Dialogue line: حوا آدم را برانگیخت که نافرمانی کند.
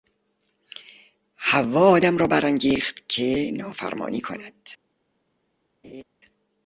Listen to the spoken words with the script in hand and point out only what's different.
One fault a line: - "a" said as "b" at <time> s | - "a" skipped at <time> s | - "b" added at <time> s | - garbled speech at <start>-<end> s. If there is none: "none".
none